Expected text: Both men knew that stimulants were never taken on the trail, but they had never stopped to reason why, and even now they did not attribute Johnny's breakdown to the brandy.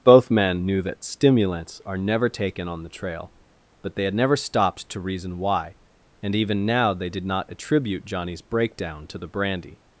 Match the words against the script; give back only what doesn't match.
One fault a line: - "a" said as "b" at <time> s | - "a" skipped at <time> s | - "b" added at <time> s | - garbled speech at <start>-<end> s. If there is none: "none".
- "were" said as "are" at 1.9 s